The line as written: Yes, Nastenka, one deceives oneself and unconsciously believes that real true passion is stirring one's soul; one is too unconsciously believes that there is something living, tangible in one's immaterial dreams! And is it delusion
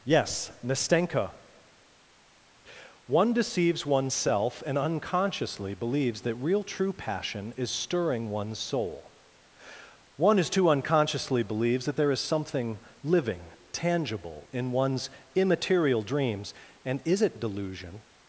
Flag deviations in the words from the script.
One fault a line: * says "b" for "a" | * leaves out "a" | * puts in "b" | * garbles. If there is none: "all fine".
all fine